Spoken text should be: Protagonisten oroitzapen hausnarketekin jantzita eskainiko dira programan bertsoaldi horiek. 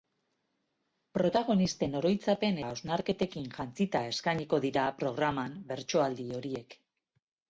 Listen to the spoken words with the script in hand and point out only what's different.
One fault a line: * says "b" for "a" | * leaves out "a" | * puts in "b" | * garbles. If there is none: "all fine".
all fine